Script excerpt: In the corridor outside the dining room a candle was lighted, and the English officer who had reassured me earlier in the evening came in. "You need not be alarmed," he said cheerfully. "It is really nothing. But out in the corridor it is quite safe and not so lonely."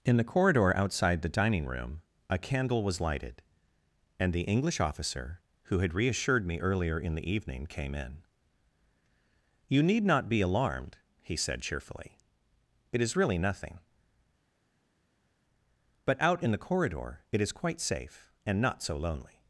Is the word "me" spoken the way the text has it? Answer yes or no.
yes